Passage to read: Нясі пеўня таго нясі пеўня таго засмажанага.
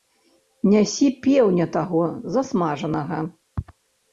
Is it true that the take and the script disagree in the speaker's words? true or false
true